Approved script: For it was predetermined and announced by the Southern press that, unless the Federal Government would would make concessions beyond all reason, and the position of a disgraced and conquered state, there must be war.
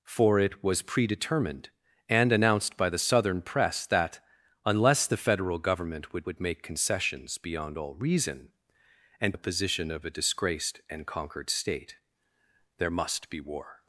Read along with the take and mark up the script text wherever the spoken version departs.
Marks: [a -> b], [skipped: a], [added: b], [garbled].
For it was predetermined and announced by the Southern press that, unless the Federal Government would would make concessions beyond all reason, and the position of a disgraced and conquered state, there must be war.